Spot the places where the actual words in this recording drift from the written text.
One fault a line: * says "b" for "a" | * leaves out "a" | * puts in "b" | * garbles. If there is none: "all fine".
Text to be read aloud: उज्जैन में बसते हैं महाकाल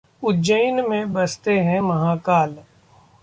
all fine